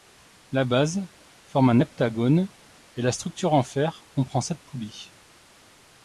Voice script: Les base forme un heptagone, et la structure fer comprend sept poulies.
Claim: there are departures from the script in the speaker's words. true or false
true